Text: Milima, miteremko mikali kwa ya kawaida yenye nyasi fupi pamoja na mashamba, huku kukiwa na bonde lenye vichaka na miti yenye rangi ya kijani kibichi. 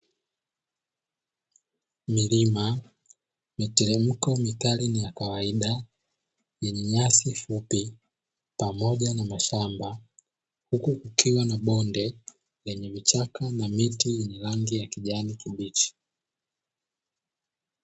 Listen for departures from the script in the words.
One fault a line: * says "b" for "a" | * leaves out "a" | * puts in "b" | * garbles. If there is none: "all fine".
* says "na" for "kwa"